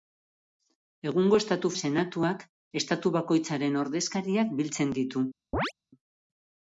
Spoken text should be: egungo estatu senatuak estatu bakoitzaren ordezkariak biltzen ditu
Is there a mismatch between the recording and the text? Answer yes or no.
no